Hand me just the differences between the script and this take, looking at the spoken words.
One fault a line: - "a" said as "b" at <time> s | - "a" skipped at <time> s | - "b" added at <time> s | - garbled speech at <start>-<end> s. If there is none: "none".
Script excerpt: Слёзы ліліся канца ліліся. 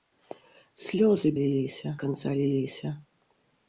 none